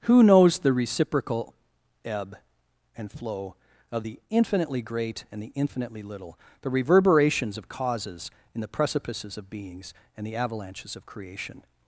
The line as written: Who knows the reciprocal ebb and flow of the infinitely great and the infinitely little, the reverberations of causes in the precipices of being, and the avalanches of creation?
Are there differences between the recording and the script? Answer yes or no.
yes